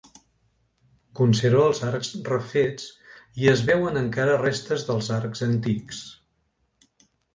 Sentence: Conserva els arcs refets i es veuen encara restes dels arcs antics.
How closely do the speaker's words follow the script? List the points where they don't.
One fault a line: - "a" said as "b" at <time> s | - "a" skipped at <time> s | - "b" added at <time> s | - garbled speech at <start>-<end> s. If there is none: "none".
none